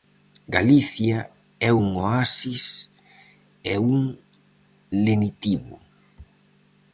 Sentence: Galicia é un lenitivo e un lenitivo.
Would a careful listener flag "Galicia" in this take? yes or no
no